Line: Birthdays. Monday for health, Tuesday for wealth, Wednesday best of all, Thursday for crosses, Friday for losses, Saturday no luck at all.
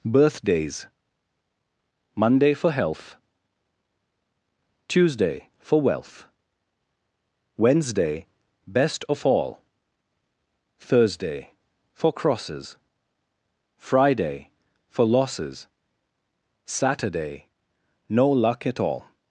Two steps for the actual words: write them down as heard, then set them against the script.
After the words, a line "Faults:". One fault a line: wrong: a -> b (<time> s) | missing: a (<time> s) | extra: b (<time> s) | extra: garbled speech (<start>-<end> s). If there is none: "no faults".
Birthdays. Monday for health, Tuesday for wealth, Wednesday best of all, Thursday for crosses, Friday for losses, Saturday no luck at all.
Faults:
no faults